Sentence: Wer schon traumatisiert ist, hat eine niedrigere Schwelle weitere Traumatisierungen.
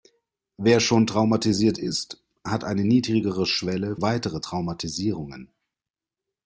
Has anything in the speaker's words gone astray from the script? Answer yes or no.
no